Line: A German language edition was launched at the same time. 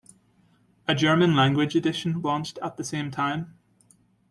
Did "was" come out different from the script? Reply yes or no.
yes